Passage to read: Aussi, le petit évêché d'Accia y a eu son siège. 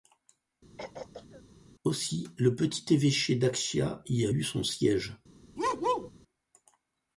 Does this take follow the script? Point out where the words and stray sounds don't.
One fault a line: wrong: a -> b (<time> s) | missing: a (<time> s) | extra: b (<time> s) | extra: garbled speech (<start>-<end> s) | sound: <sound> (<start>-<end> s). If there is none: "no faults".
sound: throat clearing (0.8-1.4 s)
sound: bark (5.6-6.1 s)